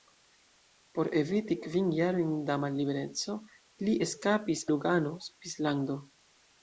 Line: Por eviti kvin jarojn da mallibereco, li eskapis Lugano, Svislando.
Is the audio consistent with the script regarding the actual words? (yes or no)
yes